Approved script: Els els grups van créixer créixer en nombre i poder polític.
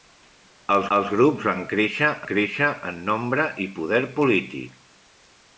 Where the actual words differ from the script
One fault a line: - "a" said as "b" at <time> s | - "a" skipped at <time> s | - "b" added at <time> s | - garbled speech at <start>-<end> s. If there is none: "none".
none